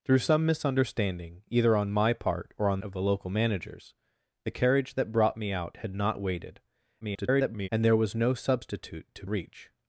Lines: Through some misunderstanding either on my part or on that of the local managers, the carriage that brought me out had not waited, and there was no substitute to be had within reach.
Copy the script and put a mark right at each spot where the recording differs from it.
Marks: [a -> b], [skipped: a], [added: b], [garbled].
Through some misunderstanding either on my part or on [skipped: that] of the local managers, the carriage that brought me out had not waited, [garbled] and there was no substitute to [skipped: be had within] reach.